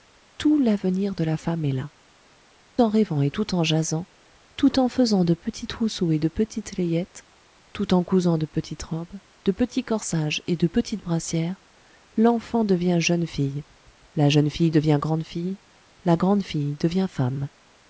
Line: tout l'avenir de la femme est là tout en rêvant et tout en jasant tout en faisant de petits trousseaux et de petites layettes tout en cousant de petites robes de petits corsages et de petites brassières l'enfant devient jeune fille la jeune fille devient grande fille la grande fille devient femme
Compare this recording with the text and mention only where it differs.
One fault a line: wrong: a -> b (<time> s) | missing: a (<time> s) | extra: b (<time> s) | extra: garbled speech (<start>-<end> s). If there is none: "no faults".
missing: tout (1.9 s)